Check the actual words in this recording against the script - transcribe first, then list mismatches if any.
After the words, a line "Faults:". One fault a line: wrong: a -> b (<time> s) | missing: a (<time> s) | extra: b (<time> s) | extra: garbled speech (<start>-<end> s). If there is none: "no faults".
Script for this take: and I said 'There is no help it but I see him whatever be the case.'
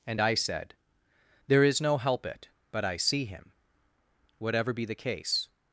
and I said 'There is no help it but I see him whatever be the case.'
Faults:
no faults